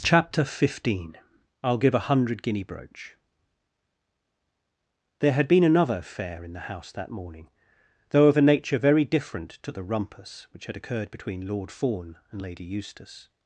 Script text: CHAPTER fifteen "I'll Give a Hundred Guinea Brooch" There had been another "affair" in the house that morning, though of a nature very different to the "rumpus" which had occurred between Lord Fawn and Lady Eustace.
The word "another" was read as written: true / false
true